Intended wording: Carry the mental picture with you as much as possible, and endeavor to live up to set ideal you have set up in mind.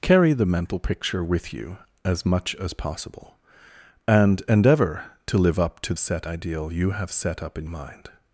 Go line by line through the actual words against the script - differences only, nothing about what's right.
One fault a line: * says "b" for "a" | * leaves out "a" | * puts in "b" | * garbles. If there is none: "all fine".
all fine